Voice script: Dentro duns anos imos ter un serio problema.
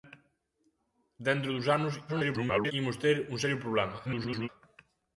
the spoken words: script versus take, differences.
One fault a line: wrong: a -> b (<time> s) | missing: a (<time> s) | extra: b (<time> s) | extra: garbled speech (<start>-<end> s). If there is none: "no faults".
extra: garbled speech (2.1-2.7 s)
extra: garbled speech (4.0-4.5 s)